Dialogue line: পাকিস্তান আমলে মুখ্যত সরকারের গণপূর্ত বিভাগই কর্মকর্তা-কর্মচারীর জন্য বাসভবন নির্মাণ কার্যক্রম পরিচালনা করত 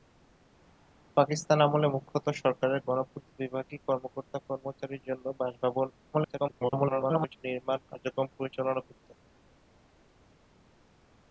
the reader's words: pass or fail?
fail